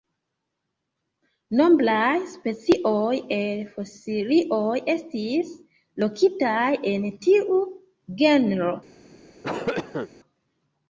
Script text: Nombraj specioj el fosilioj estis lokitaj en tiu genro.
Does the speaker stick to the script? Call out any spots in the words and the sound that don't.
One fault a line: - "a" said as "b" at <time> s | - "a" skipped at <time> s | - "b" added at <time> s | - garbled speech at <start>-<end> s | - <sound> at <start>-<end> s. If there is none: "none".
- cough at 9.4-10.1 s